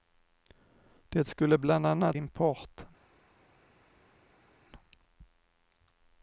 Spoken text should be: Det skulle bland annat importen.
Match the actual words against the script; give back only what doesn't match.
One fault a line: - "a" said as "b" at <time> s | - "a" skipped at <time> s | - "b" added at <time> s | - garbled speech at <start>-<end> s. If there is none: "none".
none